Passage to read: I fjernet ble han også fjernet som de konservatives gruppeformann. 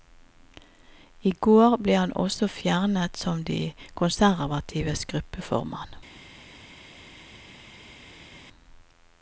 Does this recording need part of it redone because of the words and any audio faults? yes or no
yes